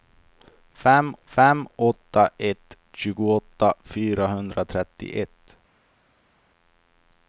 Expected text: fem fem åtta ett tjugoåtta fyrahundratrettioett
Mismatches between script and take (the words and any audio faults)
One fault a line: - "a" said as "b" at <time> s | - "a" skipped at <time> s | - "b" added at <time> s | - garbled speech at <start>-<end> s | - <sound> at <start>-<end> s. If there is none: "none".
none